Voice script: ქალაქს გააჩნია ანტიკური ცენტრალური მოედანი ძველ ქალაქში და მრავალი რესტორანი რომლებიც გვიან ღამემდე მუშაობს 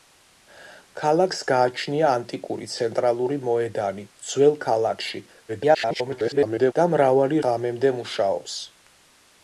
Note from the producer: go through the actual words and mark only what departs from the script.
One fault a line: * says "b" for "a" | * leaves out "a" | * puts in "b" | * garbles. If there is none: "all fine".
* garbles
* leaves out "რესტორანი რომლებიც გვიან"